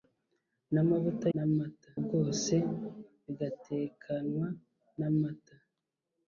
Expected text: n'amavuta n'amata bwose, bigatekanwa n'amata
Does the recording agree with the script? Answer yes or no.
yes